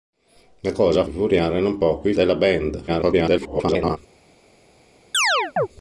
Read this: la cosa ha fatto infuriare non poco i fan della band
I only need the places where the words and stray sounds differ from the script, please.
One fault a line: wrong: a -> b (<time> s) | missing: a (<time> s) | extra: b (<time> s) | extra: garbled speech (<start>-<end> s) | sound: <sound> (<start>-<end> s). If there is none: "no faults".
missing: fatto (1.1 s)
missing: fan (2.1 s)
extra: garbled speech (2.9-4.0 s)
sound: chirp (5.1-5.7 s)